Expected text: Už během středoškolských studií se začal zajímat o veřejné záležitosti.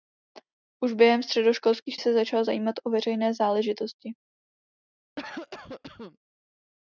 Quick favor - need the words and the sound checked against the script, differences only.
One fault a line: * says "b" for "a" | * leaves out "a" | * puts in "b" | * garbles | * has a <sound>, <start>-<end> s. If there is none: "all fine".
* leaves out "studií"
* has a cough, 5.2-6.2 s